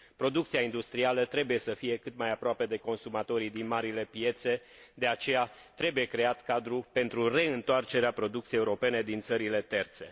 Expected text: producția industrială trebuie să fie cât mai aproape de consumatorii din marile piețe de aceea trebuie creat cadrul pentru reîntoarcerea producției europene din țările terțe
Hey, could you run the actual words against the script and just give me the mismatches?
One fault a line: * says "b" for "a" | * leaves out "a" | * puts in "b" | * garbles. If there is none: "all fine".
all fine